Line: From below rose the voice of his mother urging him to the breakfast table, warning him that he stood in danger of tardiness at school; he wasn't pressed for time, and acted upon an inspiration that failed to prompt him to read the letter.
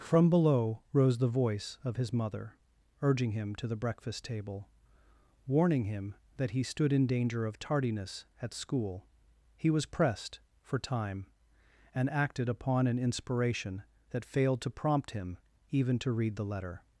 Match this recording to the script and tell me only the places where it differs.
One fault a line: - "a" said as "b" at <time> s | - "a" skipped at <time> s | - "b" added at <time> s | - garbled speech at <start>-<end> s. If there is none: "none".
- "wasn't" said as "was" at 9.7 s
- "even" added at 15.7 s